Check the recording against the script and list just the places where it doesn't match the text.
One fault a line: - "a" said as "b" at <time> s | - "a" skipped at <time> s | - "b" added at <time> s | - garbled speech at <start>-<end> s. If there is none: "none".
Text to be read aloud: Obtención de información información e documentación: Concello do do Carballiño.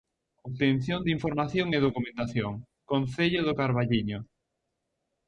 - "información" skipped at 1.7 s
- "do" skipped at 3.6 s